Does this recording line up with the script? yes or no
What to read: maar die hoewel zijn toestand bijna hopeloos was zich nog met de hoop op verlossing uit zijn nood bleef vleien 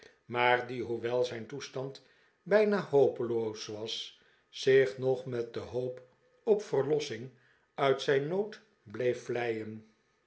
yes